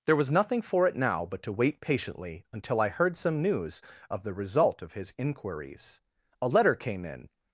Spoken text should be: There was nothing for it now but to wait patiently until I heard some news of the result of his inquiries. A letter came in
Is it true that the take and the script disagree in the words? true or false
false